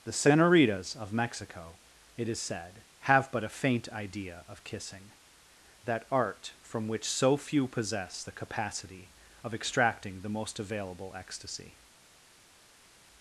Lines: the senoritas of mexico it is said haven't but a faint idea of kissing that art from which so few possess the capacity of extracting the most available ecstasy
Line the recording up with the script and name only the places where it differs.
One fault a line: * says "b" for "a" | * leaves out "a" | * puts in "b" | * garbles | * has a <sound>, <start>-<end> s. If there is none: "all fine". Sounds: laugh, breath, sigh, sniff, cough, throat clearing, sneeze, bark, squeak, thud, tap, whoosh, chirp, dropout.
* says "have" for "haven't"